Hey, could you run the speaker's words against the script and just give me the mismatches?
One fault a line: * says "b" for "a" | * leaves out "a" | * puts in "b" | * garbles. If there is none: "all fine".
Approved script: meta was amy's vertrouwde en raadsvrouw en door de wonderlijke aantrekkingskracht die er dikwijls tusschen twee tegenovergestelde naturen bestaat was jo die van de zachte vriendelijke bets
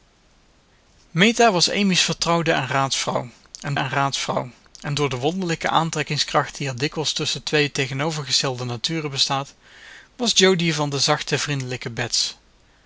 * puts in "en raadsvrouw en"